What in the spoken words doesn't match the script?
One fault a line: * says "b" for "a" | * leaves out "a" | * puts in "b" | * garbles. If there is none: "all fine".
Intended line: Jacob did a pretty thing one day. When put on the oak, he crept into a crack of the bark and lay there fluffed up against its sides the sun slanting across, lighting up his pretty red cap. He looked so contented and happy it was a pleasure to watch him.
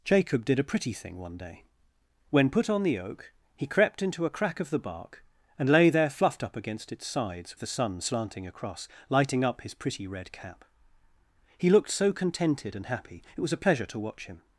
all fine